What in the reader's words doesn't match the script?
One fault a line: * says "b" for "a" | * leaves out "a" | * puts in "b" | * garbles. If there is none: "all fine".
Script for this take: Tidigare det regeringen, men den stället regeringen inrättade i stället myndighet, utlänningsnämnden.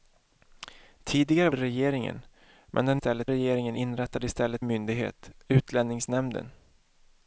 all fine